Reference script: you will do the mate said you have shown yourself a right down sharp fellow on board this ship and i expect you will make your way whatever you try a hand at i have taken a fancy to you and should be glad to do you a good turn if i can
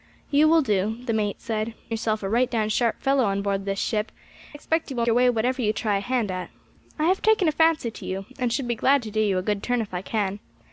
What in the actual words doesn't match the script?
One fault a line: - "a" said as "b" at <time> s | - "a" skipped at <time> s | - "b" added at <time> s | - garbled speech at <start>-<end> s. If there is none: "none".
- "you have shown" skipped at 1.8 s
- "and i" skipped at 4.1 s
- "make" skipped at 5.1 s